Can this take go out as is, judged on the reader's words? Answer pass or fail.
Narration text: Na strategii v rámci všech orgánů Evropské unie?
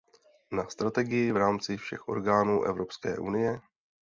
pass